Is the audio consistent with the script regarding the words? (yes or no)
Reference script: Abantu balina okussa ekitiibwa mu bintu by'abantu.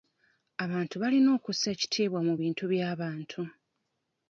yes